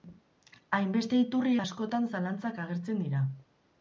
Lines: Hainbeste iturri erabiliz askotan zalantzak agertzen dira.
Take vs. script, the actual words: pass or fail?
fail